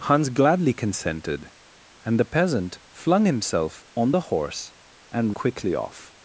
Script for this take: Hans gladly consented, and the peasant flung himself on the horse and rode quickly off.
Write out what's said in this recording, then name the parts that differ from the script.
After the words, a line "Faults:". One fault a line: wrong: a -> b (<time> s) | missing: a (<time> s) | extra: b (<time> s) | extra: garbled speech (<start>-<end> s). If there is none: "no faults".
Hans gladly consented, and the peasant flung himself on the horse and quickly off.
Faults:
missing: rode (5.4 s)